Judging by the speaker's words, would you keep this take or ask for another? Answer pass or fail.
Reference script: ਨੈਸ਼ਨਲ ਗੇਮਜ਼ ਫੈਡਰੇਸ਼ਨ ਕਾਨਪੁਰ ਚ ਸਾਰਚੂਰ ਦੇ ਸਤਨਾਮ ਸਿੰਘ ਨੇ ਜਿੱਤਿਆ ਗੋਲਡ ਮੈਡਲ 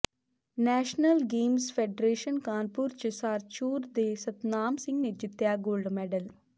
pass